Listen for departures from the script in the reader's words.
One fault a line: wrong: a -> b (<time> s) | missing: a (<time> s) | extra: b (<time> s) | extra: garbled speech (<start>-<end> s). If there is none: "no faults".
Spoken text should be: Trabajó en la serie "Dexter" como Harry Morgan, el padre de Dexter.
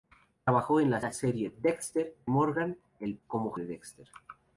extra: la (1.0 s)
missing: como Harry (2.2 s)
wrong: padre -> como (3.3 s)